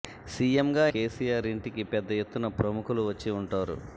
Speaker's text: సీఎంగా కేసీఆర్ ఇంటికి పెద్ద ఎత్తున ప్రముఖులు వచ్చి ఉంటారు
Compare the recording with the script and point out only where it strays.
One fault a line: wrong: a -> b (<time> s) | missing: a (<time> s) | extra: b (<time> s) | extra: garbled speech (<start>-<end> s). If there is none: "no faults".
no faults